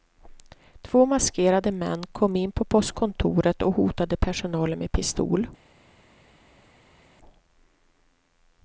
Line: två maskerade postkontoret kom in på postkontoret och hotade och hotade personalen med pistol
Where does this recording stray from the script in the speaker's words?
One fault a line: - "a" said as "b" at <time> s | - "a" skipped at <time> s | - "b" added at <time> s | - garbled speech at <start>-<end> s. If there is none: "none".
- "postkontoret" said as "män" at 1.7 s
- "och hotade" skipped at 4.2 s